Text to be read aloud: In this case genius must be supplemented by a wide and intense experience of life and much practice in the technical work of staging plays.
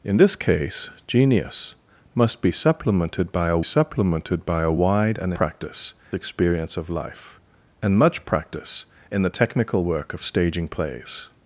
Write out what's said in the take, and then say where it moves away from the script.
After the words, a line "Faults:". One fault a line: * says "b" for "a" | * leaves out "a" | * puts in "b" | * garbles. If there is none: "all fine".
In this case genius must be supplemented by a supplemented by a wide and practice experience of life and much practice in the technical work of staging plays.
Faults:
* puts in "supplemented by a"
* says "practice" for "intense"